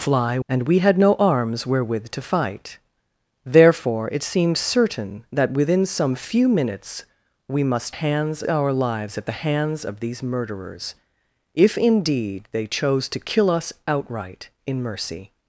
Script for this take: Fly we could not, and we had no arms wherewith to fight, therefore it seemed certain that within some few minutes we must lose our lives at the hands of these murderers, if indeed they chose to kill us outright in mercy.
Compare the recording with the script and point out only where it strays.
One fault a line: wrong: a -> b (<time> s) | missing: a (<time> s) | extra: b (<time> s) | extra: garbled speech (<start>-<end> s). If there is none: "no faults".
missing: we could not (0.4 s)
wrong: lose -> hands (7.9 s)